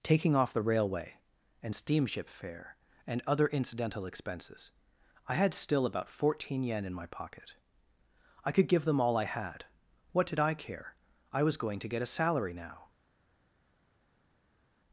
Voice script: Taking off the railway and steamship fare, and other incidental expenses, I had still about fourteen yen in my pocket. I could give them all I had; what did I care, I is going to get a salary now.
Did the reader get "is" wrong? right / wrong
wrong